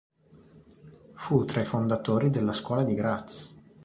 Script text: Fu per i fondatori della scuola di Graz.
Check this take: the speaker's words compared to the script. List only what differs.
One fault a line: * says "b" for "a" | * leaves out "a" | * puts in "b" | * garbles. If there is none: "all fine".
* says "tra" for "per"